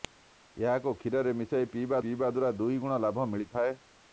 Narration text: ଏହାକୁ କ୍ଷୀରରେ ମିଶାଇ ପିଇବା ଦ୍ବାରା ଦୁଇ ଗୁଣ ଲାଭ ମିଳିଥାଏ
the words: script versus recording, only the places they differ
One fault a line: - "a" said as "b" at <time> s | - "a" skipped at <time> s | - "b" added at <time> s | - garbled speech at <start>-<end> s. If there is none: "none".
- "ପିଇବା" added at 2.0 s